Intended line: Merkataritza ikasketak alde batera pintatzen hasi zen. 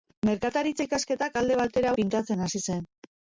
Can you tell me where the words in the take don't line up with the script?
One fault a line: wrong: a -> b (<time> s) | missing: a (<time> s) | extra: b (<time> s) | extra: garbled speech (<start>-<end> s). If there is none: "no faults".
no faults